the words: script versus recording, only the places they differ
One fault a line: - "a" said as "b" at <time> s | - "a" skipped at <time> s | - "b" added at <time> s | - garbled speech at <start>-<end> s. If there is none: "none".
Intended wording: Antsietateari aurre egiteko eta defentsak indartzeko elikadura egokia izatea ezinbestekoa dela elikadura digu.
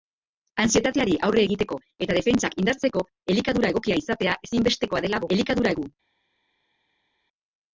none